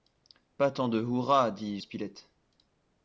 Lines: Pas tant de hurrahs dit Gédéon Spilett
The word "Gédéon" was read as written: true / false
false